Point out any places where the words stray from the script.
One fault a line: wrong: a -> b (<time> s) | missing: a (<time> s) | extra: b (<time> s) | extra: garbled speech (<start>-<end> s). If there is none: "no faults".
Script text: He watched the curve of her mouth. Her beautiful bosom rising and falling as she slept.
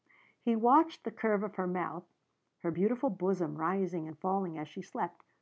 no faults